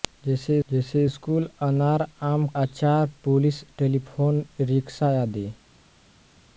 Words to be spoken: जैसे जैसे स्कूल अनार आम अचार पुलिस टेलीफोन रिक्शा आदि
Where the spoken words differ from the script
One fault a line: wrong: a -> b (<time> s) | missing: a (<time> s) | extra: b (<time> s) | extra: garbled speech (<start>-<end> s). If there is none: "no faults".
no faults